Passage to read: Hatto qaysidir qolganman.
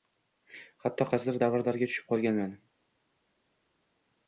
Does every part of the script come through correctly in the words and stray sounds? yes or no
no